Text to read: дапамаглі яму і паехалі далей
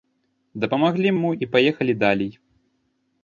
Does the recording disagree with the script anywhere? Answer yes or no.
no